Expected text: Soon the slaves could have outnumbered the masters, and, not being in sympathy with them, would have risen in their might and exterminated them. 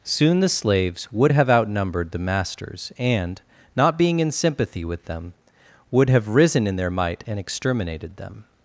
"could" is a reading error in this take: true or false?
true